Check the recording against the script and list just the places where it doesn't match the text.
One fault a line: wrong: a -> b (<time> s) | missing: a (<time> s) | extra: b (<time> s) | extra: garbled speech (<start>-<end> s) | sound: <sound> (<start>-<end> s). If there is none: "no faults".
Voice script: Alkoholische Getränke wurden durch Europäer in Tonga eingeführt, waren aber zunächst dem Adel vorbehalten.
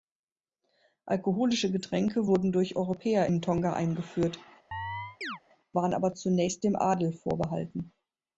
sound: chirp (4.7-5.4 s)